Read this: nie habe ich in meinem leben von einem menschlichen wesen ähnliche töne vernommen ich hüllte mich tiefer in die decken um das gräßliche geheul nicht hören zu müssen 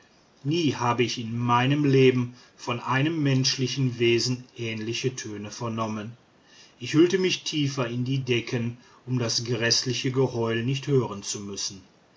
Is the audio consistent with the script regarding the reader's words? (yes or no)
yes